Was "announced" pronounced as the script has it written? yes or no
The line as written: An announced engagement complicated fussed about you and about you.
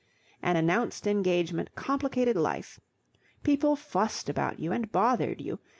yes